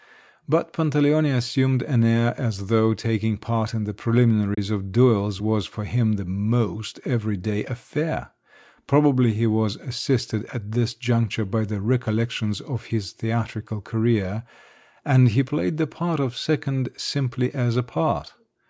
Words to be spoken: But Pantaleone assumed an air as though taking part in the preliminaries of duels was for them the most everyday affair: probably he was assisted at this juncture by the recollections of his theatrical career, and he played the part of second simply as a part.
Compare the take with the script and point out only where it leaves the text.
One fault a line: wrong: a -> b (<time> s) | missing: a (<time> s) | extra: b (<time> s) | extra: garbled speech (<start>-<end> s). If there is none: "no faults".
wrong: them -> him (5.8 s)